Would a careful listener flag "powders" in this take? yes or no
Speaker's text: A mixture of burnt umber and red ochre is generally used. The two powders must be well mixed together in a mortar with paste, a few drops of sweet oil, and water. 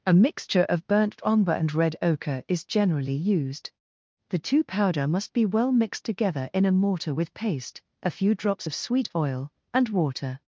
yes